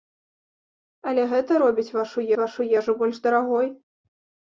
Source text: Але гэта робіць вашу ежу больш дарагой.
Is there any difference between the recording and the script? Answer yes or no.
yes